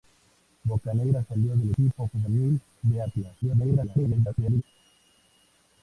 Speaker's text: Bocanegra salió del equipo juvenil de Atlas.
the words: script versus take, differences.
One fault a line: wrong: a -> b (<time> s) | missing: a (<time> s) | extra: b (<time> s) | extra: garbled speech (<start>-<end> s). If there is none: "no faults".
extra: garbled speech (3.4-4.6 s)